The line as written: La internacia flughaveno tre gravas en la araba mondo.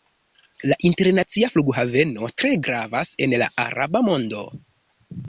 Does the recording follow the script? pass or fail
pass